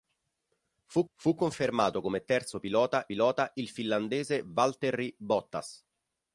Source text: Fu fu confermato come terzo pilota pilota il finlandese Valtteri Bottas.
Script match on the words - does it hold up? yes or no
yes